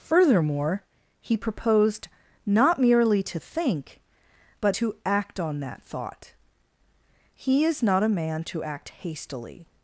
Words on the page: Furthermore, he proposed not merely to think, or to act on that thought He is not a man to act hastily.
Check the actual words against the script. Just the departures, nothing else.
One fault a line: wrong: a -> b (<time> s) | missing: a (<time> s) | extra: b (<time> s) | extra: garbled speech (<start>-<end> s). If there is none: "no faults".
wrong: or -> but (4.6 s)